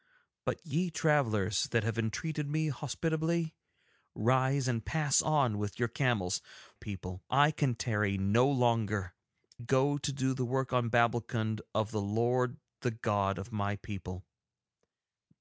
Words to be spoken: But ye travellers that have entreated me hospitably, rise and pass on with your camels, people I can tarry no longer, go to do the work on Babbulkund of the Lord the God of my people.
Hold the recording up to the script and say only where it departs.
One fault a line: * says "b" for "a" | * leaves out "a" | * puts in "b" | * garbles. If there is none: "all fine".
all fine